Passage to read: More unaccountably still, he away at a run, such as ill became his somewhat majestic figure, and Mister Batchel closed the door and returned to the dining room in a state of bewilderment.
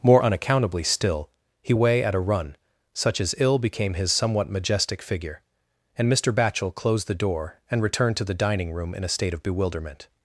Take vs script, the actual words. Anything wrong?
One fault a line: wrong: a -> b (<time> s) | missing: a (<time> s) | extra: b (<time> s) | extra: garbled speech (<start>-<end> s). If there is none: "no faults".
no faults